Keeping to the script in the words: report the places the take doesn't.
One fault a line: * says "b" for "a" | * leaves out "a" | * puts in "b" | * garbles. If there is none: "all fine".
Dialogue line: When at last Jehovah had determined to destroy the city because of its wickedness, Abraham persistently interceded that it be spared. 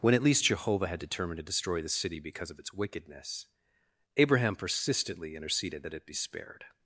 * says "least" for "last"